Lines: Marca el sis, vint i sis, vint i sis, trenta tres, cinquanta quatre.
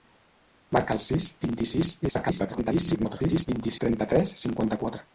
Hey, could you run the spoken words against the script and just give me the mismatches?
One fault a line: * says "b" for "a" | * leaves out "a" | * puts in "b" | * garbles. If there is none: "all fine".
* garbles
* leaves out "sis"